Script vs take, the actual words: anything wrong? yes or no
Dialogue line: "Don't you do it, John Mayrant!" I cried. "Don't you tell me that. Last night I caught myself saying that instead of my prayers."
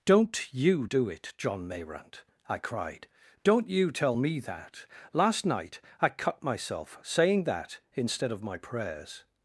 yes